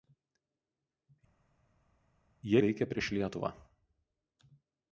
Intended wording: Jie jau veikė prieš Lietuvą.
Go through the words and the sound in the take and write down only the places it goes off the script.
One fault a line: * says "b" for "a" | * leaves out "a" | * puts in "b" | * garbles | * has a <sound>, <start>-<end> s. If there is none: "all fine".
* leaves out "jau"